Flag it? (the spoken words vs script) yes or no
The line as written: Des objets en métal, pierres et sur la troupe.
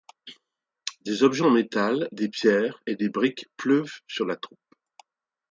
yes